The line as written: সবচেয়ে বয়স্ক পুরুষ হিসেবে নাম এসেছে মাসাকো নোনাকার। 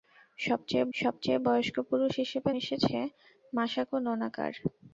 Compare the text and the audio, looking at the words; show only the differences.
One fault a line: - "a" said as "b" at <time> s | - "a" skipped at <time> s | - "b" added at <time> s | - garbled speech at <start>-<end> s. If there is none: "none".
- "সবচেয়ে" added at 0.9 s
- "নাম" skipped at 2.5 s